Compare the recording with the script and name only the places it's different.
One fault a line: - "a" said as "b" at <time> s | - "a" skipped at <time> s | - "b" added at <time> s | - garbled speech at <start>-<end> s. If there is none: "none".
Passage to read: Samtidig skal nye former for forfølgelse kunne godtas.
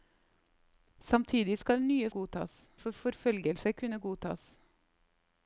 - "former" said as "godtas" at 2.1 s